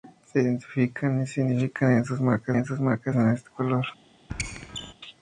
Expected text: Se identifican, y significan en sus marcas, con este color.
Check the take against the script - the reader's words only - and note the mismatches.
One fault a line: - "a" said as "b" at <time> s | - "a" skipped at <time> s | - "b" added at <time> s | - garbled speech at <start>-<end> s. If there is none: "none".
- "en sus marcas" added at 2.5 s